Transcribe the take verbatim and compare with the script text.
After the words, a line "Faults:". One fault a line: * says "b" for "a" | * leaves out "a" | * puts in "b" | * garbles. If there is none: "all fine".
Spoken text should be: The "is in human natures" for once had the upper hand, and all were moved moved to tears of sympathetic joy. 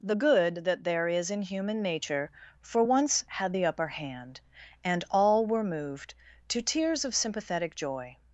The "good that there is in human nature" for once had the upper hand, and all were moved to tears of sympathetic joy.
Faults:
* puts in "good that there"
* says "nature" for "natures"
* leaves out "moved"